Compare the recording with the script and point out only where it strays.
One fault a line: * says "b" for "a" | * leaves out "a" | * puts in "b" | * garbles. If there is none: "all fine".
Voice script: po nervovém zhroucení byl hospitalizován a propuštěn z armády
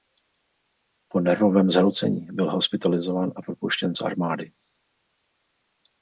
all fine